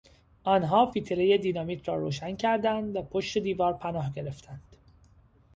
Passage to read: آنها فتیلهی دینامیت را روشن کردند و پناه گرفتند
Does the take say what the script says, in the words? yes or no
no